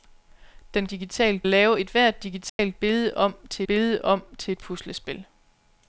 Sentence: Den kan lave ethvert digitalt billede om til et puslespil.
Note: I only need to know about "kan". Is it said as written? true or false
false